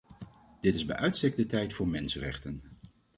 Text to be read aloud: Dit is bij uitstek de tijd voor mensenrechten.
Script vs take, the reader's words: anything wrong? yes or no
no